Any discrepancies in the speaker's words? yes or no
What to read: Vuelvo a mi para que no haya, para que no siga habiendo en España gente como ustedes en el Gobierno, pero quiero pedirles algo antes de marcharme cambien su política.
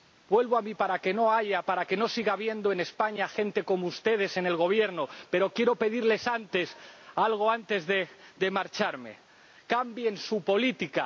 no